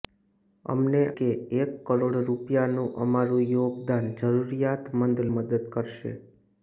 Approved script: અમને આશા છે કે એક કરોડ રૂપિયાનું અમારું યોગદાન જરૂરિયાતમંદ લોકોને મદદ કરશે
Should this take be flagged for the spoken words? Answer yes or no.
yes